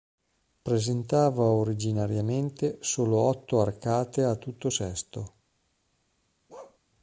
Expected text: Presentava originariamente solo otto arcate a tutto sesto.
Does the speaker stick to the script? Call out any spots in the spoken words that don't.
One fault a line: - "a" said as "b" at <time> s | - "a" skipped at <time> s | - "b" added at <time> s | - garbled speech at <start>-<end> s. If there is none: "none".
none